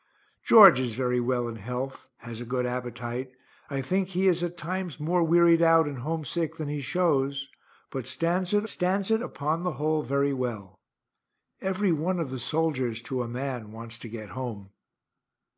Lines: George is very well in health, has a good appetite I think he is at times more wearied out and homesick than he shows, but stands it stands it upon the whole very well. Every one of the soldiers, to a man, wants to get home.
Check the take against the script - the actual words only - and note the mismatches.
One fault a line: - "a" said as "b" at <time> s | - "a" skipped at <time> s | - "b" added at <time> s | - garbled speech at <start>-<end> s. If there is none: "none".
none